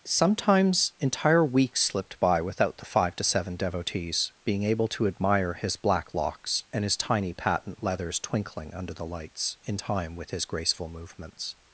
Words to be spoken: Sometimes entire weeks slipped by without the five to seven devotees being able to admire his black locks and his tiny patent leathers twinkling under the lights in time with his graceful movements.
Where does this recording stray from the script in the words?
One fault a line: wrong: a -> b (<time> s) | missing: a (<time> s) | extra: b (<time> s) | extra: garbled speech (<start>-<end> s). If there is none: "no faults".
no faults